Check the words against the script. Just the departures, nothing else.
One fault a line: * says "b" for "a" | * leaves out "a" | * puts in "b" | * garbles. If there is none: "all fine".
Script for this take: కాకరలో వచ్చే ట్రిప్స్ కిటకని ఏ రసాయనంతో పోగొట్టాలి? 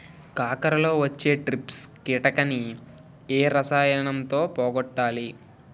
all fine